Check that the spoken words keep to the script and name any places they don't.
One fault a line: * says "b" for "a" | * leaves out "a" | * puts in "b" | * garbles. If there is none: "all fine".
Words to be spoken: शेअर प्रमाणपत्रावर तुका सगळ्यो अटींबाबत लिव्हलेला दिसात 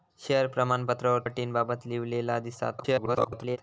* leaves out "तुका सगळ्यो"
* garbles